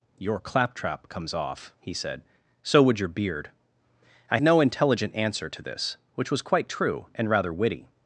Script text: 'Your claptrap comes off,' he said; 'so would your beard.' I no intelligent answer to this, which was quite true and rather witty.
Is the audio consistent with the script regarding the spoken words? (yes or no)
yes